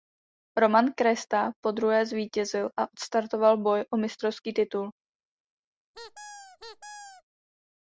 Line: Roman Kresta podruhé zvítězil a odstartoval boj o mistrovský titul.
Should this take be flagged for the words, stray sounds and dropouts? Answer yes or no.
yes